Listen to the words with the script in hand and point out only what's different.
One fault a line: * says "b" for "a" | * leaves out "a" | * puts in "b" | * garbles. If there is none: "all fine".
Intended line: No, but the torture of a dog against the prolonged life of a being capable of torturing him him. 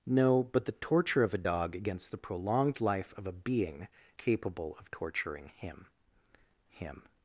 all fine